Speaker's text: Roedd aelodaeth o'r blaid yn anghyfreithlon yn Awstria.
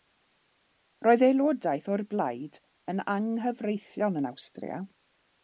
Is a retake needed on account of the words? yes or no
no